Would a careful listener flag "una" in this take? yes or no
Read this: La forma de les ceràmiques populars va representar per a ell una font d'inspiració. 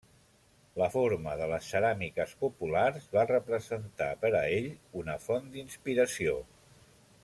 no